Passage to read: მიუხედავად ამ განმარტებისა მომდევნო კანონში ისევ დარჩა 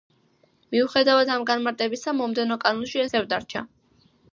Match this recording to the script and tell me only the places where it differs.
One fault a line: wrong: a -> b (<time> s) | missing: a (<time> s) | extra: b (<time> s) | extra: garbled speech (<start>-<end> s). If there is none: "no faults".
no faults